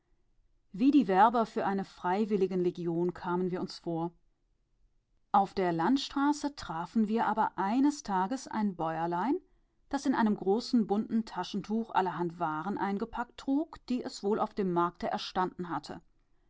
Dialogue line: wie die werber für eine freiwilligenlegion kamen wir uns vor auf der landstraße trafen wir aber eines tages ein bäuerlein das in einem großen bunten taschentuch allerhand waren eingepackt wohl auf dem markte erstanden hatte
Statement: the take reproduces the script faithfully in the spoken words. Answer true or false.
false